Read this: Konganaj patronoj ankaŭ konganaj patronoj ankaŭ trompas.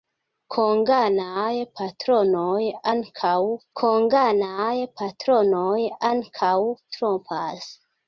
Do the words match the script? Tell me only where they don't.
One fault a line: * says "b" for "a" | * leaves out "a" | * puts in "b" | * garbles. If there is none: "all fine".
all fine